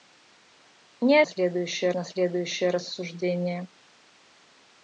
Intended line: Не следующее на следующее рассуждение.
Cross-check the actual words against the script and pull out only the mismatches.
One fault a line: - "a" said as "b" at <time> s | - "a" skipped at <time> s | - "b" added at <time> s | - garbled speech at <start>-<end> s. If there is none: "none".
none